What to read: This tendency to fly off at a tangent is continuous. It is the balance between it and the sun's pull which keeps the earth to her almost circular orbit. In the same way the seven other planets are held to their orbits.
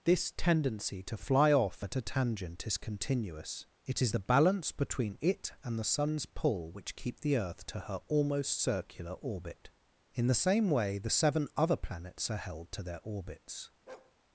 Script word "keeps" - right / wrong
wrong